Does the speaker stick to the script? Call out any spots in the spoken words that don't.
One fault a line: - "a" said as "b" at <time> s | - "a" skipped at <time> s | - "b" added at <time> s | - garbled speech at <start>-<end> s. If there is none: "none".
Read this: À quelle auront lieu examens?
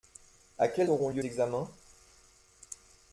none